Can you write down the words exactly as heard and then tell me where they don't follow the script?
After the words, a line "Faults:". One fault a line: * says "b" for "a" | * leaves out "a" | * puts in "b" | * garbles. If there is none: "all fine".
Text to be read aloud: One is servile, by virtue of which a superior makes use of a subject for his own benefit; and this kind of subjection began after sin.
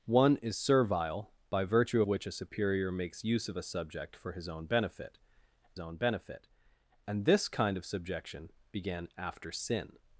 One is servile, by virtue which a superior makes use of a subject for his own benefit own benefit; and this kind of subjection began after sin.
Faults:
* leaves out "of"
* puts in "own benefit"